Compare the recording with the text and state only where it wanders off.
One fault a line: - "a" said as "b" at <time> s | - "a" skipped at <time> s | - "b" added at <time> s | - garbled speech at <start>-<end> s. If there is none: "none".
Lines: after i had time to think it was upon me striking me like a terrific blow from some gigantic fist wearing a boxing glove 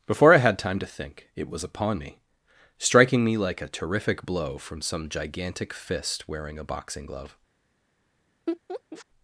- "after" said as "before" at 0.1 s